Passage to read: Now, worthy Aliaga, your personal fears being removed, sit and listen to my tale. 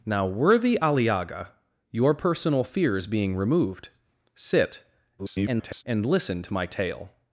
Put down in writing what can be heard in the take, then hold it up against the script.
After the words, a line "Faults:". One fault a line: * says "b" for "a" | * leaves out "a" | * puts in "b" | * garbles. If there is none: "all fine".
Now, worthy Aliaga, your personal fears being removed, sit [garbled] and listen to my tale.
Faults:
* garbles